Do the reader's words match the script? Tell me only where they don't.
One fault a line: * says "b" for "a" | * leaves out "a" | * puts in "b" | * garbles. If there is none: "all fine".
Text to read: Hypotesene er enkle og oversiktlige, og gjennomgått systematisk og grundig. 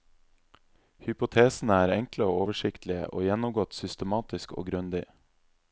all fine